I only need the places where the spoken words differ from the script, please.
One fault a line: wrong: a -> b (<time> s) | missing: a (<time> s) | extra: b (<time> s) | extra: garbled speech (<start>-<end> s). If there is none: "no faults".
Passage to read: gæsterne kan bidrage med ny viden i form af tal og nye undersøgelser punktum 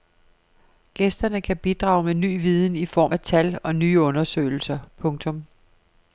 no faults